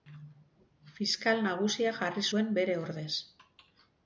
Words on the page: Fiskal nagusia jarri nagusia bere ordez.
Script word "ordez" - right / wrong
right